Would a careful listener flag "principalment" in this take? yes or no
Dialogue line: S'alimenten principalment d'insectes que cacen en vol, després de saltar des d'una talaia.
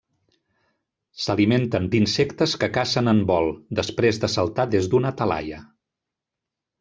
yes